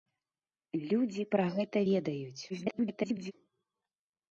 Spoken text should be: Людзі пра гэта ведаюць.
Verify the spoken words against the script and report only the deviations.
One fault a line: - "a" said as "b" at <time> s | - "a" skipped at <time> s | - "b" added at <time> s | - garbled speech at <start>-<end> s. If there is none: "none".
- garbled speech at 2.5-3.3 s